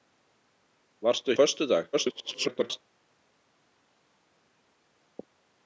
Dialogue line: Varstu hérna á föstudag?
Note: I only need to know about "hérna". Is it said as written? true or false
false